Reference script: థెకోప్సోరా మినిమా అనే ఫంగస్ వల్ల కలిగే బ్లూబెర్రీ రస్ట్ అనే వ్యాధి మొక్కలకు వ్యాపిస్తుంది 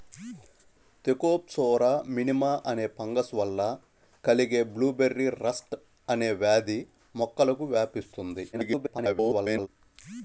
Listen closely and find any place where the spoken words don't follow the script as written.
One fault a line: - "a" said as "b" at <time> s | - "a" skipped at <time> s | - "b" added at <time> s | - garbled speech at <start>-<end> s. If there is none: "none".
- garbled speech at 8.5-9.7 s